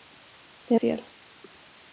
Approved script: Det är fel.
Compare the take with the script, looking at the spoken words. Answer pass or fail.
pass